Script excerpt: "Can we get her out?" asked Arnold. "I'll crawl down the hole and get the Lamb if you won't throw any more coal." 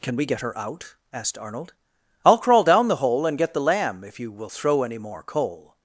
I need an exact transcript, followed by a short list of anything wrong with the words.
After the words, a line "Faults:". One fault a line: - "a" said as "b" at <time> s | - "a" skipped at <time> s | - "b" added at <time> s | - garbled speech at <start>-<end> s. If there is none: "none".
"Can we get her out?" asked Arnold. "I'll crawl down the hole and get the Lamb if you will throw any more coal."
Faults:
- "won't" said as "will" at 4.3 s